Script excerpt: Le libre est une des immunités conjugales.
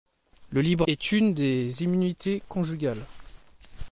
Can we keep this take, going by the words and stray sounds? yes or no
yes